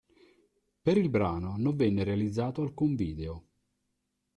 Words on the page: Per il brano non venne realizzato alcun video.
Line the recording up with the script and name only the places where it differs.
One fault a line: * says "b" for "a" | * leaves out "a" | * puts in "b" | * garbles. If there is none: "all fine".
all fine